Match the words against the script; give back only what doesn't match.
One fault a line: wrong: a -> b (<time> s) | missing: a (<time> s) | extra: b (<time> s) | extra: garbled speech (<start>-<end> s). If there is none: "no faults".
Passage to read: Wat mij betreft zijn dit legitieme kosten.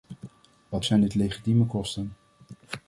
missing: mij betreft (0.8 s)